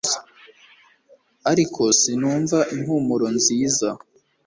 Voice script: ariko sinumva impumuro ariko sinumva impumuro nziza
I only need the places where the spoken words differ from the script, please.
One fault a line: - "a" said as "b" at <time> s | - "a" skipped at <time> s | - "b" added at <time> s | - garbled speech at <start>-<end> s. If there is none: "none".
- "ariko sinumva impumuro" skipped at 3.3 s